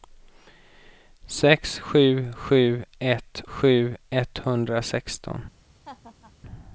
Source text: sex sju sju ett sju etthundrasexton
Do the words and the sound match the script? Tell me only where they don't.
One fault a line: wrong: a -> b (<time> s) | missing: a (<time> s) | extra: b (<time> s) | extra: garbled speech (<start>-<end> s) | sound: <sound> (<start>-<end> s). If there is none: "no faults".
sound: laugh (5.9-6.3 s)